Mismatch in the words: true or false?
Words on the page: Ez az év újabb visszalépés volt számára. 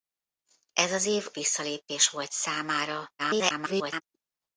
true